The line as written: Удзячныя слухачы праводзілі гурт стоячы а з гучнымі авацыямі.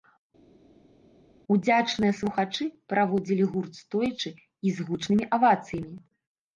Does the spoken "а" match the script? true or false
false